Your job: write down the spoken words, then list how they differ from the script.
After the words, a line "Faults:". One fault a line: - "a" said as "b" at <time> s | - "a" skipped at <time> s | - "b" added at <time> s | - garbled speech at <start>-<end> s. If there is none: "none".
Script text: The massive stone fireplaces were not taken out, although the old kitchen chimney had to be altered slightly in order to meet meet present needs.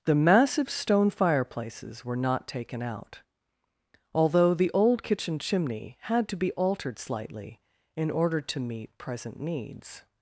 The massive stone fireplaces were not taken out, although the old kitchen chimney had to be altered slightly in order to meet present needs.
Faults:
- "meet" skipped at 9.0 s